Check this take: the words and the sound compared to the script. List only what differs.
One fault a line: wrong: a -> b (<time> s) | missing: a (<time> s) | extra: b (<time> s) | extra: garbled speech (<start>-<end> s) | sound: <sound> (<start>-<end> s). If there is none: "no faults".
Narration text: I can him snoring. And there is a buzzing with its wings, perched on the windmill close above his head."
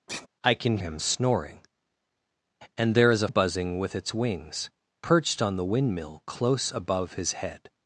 sound: sigh (0.1-0.3 s)